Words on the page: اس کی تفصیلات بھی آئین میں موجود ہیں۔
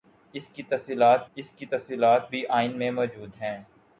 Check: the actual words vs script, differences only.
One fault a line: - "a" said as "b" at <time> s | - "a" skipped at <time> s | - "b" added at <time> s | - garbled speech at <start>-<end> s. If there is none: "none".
- "اس کی تفصیلات" added at 1.4 s